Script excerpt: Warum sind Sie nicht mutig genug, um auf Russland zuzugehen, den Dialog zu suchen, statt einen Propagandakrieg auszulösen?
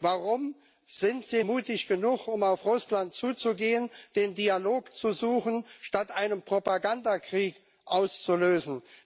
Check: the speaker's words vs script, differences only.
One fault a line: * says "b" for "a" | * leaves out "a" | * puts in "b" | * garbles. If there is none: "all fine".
* leaves out "nicht"